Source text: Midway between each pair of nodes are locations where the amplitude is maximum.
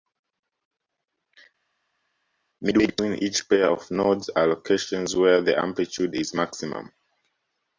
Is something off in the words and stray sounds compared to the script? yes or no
no